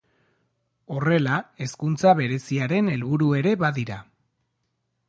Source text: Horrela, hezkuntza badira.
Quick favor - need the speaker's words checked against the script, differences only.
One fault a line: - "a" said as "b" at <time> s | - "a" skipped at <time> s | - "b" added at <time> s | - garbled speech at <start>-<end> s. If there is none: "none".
- "bereziaren helburu ere" added at 2.2 s